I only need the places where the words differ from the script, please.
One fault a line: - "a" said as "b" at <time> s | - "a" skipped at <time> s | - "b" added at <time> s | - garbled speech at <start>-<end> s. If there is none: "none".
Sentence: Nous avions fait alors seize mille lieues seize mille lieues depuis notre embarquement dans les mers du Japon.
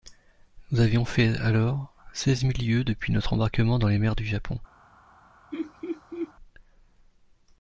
- "seize mille lieues" skipped at 2.8 s